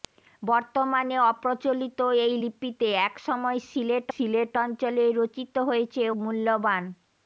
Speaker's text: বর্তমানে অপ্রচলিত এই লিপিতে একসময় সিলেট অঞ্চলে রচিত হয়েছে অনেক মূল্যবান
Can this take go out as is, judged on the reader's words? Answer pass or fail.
fail